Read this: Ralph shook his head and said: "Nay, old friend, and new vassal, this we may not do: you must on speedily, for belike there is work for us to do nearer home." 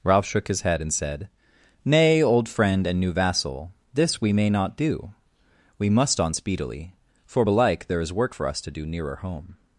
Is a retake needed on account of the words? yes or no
yes